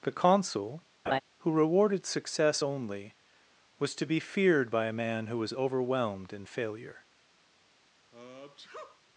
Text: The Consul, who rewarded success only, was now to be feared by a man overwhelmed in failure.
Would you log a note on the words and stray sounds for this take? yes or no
yes